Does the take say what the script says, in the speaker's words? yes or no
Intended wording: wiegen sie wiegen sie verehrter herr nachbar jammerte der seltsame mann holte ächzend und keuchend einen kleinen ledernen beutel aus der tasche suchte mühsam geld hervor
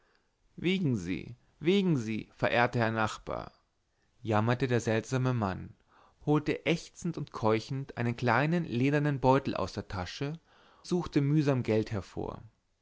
yes